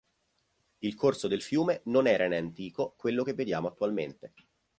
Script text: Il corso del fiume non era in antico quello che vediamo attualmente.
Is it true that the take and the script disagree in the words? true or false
false